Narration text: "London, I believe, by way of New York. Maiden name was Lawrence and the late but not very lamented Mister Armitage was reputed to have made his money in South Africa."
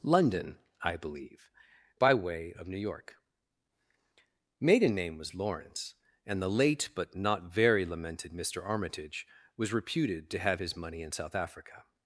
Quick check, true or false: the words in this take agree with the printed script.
false